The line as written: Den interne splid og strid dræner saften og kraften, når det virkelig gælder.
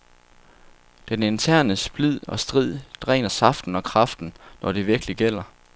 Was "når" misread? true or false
false